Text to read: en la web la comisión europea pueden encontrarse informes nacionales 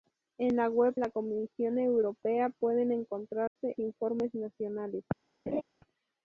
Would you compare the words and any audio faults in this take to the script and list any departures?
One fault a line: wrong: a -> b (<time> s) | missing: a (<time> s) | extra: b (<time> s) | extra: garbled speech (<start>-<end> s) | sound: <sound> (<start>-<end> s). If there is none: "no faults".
sound: dropout (3.5-3.6 s)
sound: laugh (5.5-5.6 s)